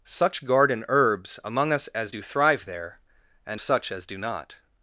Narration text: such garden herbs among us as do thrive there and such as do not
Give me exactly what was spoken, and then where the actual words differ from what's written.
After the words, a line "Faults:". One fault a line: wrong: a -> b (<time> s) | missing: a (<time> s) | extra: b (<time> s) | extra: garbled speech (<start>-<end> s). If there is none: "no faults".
such garden herbs among us as do thrive there and such as do not
Faults:
no faults